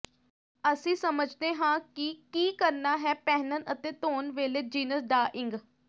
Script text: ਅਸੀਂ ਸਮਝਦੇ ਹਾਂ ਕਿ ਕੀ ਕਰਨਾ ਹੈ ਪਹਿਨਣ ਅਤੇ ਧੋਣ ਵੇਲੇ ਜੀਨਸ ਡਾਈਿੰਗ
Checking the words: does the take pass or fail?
pass